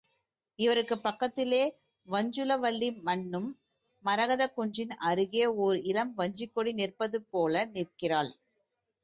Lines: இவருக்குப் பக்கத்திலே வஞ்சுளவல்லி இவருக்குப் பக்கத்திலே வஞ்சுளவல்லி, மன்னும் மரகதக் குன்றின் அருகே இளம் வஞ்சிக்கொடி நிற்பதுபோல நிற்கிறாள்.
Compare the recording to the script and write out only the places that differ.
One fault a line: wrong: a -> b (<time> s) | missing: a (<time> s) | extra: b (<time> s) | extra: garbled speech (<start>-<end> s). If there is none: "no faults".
missing: இவருக்குப் பக்கத்திலே வஞ்சுளவல்லி (2.9 s)
extra: ஓர் (5.6 s)